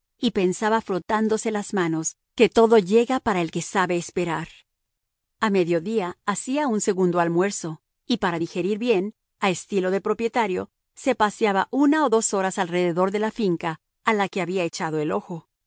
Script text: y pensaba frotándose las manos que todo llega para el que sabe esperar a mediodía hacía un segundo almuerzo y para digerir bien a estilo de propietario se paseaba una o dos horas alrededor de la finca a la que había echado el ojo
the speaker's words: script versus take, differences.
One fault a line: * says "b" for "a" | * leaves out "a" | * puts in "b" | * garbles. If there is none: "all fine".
all fine